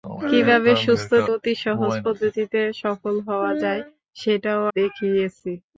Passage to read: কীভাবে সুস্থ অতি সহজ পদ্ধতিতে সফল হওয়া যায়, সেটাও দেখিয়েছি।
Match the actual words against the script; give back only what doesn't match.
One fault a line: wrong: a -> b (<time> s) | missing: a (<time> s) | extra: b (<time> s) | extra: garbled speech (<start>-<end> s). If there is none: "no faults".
no faults